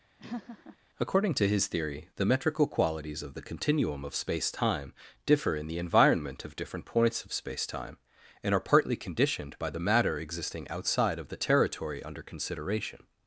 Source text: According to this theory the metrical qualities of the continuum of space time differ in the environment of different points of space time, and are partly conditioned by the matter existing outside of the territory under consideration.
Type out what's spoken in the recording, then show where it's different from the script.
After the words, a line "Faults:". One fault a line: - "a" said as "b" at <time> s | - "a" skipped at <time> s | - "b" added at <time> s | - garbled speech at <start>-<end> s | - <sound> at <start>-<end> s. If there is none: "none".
According to his theory the metrical qualities of the continuum of space time differ in the environment of different points of space time, and are partly conditioned by the matter existing outside of the territory under consideration.
Faults:
- laugh at 0.2-0.8 s
- "this" said as "his" at 1.5 s